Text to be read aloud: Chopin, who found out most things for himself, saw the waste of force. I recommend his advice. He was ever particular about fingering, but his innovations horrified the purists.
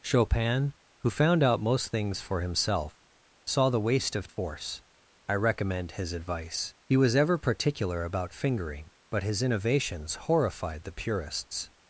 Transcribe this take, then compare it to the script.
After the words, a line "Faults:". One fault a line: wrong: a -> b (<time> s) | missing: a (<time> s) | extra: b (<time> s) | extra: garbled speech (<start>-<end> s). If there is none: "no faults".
Chopin, who found out most things for himself, saw the waste of force. I recommend his advice. He was ever particular about fingering, but his innovations horrified the purists.
Faults:
no faults